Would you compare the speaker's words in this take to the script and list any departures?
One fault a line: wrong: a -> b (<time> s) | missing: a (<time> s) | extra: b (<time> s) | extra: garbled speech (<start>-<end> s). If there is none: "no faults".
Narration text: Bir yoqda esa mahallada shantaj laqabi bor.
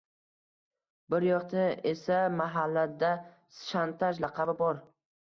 no faults